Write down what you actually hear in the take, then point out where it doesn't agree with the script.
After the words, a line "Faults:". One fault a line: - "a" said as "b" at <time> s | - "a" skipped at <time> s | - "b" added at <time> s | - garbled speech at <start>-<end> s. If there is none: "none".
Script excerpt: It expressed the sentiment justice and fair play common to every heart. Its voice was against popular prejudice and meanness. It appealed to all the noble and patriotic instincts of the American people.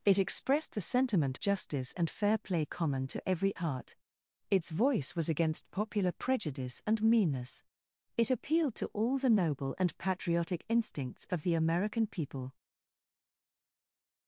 It expressed the sentiment justice and fair play common to every heart. Its voice was against popular prejudice and meanness. It appealed to all the noble and patriotic instincts of the American people.
Faults:
none